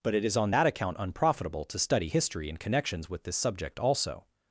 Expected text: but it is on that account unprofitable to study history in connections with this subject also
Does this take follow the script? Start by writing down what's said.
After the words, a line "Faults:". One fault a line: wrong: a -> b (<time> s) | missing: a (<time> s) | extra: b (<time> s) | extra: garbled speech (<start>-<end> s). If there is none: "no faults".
but it is on that account unprofitable to study history in connections with this subject also
Faults:
no faults